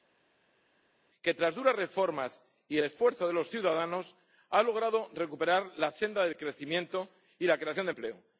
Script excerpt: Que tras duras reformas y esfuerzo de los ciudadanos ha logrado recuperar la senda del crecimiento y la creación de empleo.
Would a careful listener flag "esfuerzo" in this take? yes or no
no